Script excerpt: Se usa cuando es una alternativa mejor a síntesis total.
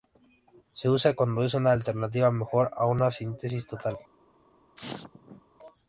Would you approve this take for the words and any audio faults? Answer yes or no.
no